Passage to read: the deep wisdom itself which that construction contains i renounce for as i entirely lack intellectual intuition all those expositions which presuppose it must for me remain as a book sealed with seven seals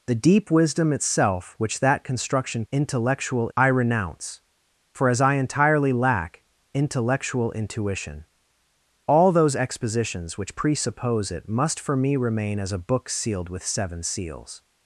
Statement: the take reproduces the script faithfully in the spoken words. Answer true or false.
false